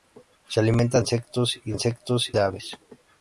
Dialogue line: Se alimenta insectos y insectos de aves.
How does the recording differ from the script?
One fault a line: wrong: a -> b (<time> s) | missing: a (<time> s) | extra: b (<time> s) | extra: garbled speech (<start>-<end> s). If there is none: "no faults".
no faults